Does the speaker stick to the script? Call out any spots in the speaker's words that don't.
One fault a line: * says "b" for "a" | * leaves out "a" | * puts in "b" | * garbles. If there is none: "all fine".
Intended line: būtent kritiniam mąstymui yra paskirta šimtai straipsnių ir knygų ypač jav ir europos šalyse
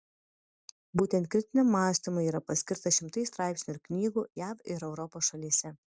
* leaves out "ypač"